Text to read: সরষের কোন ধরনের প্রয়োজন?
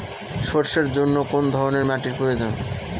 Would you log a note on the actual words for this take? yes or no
yes